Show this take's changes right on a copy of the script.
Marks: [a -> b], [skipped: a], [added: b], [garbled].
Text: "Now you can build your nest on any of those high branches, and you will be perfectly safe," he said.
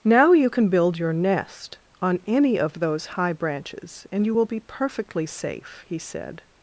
"Now you can build your nest on any of those high branches, and you will be perfectly safe," he said.